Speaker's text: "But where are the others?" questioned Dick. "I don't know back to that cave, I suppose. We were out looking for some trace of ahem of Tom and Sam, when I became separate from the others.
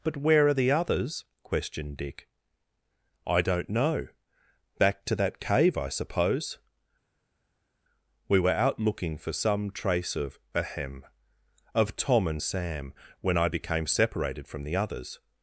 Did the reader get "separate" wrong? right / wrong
wrong